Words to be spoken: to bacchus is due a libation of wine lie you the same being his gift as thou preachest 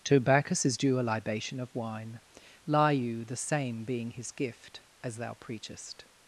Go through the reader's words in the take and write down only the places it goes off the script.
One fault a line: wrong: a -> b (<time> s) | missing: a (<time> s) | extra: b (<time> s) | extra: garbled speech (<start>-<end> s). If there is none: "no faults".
no faults